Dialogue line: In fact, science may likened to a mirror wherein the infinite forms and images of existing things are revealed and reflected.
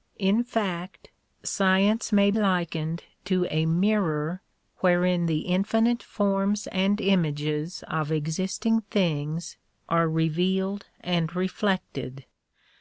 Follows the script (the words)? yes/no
yes